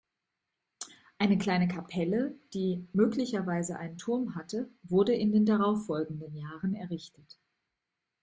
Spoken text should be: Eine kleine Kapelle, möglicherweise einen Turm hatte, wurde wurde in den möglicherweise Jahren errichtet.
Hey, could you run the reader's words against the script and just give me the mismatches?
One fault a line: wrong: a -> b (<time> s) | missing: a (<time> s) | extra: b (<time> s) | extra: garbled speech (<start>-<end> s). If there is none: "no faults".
extra: die (2.5 s)
missing: wurde (5.2 s)
wrong: möglicherweise -> darauffolgenden (5.4 s)